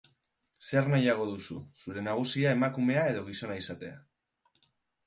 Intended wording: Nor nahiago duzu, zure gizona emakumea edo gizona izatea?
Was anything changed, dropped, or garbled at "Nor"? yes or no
yes